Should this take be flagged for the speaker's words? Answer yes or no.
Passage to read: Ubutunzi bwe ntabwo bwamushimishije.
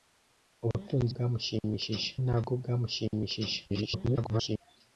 yes